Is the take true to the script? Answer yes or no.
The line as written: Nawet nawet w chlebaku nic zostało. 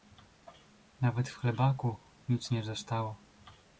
no